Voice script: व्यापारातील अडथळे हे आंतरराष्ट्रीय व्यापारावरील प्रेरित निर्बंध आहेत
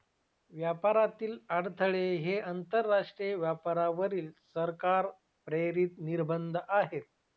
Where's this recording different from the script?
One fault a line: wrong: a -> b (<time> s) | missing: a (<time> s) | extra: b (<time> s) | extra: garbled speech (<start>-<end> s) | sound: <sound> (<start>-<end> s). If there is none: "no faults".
extra: सरकार (4.5 s)